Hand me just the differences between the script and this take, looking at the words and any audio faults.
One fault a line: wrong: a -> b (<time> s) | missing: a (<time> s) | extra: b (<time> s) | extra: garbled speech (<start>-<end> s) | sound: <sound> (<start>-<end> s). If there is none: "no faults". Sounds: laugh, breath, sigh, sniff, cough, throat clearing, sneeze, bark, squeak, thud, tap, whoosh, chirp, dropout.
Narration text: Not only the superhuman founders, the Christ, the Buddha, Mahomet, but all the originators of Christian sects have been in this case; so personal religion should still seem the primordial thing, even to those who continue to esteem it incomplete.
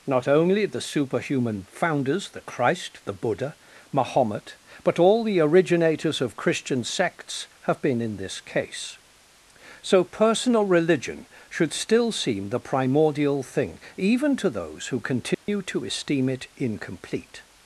sound: dropout (15.3-15.5 s)